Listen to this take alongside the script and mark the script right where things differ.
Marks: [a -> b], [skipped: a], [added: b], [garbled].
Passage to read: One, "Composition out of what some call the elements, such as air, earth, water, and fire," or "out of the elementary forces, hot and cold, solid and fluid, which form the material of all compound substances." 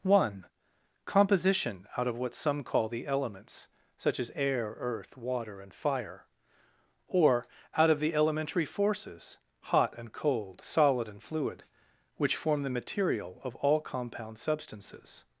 One, "Composition out of what some call the elements, such as air, earth, water, and fire," or "out of the elementary forces, hot and cold, solid and fluid, which form the material of all compound substances."